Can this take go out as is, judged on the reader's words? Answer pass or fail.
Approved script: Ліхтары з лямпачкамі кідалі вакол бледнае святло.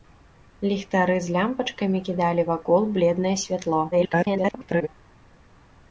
fail